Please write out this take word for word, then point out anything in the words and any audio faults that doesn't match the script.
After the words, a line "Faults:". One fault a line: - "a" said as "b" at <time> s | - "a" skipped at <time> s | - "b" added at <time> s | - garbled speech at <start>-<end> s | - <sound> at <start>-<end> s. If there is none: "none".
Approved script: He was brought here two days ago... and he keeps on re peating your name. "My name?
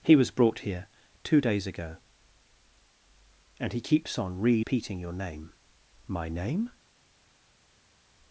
He was brought here two days ago... and he keeps on re peating your name. "My name?
Faults:
none